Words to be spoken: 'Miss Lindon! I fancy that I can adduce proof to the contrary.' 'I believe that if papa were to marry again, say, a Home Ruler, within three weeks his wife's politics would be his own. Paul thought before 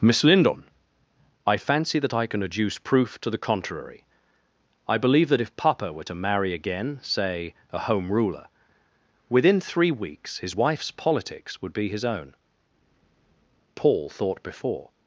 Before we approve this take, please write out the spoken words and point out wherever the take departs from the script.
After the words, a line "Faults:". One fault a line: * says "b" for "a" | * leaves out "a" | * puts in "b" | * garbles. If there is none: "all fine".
'Miss Lindon! I fancy that I can adduce proof to the contrary.' 'I believe that if papa were to marry again, say, a Home Ruler, within three weeks his wife's politics would be his own. Paul thought before
Faults:
all fine